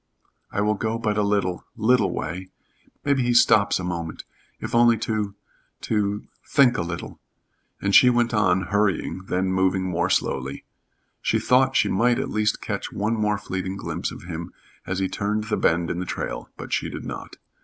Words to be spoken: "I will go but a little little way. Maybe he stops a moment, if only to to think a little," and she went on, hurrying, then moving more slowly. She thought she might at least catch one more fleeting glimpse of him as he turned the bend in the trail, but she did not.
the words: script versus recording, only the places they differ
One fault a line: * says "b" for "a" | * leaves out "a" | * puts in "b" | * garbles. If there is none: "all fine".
all fine